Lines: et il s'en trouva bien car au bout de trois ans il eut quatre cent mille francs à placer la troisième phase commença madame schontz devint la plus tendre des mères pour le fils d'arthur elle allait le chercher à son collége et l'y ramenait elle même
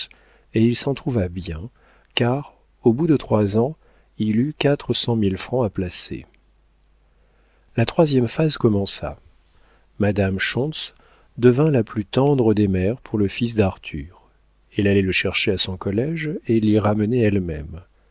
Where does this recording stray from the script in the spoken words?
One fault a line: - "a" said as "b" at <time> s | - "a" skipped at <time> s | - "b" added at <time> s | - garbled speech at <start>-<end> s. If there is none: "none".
none